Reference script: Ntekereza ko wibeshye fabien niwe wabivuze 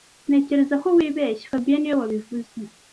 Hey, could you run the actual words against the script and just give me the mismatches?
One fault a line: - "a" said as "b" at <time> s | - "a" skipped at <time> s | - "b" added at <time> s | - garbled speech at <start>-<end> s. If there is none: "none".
none